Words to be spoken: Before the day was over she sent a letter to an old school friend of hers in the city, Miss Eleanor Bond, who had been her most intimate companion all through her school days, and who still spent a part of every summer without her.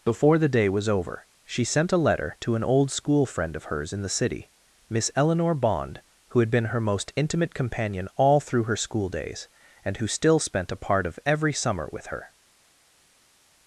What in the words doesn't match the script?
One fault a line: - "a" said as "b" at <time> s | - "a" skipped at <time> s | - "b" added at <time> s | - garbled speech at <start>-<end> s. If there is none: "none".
- "without" said as "with" at 11.9 s